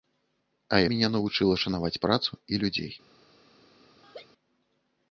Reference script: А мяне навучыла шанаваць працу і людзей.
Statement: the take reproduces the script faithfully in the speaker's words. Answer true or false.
true